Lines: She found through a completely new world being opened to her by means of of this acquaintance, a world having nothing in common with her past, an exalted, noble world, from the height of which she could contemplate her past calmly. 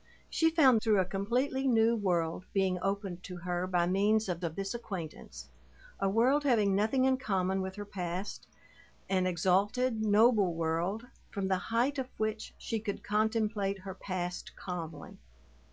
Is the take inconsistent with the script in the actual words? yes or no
no